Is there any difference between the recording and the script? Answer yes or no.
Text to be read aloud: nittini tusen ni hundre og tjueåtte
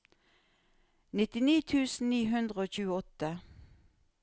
no